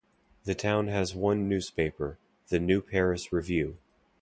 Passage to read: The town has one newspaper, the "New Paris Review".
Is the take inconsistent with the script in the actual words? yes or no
no